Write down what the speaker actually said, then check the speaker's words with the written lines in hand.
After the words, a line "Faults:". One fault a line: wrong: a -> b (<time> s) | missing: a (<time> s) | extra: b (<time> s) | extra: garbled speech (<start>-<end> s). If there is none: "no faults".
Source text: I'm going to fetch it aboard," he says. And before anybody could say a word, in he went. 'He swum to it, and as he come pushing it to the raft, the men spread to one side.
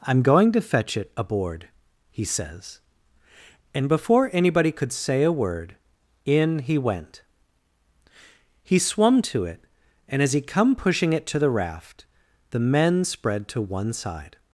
I'm going to fetch it aboard," he says. And before anybody could say a word, in he went. 'He swum to it, and as he come pushing it to the raft, the men spread to one side.
Faults:
no faults